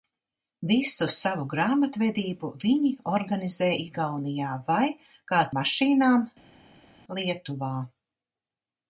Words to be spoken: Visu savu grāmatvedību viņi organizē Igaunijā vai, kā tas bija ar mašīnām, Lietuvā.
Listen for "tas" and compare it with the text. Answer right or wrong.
wrong